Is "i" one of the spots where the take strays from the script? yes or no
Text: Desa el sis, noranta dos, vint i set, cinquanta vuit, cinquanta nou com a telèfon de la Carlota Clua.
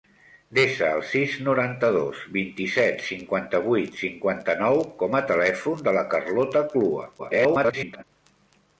no